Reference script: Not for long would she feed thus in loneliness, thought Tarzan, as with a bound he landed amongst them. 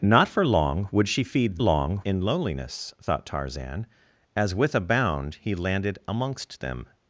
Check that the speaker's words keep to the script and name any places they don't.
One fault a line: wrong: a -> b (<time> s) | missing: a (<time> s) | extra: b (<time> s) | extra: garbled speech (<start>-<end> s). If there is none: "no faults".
wrong: thus -> long (1.6 s)